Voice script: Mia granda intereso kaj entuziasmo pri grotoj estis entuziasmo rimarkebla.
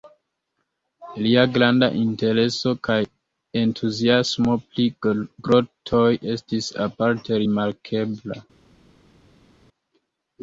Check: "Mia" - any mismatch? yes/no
yes